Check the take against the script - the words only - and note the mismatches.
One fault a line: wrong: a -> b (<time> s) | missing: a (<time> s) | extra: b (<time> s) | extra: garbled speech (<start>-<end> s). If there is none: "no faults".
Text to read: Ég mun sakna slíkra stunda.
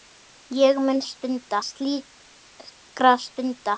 wrong: sakna -> stunda (1.1 s)